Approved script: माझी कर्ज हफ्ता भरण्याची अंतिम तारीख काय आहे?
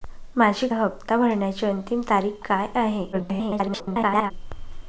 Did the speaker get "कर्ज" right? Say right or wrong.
wrong